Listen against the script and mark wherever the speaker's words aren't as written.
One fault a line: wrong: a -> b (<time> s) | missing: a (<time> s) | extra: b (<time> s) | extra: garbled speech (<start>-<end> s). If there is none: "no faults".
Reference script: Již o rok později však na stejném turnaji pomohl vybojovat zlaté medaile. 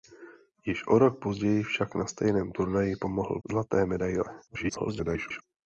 missing: vybojovat (3.4 s)
extra: garbled speech (4.5-5.4 s)